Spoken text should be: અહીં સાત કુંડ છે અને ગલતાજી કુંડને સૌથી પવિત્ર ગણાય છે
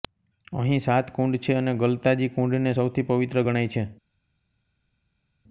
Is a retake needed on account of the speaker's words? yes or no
no